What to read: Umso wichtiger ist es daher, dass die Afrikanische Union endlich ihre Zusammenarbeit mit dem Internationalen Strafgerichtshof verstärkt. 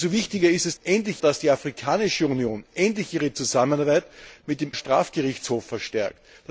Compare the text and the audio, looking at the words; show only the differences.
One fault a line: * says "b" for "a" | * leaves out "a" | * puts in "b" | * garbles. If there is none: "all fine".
* says "endlich" for "daher"
* leaves out "Internationalen"